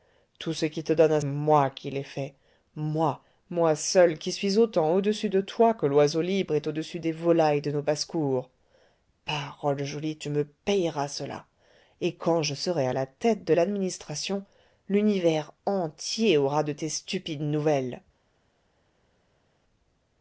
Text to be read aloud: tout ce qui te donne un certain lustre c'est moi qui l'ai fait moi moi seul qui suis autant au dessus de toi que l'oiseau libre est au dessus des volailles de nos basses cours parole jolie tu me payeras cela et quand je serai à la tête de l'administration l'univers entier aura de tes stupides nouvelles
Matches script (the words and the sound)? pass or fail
fail